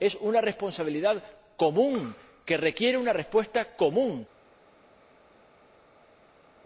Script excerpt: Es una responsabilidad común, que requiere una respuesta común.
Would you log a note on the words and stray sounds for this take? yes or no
no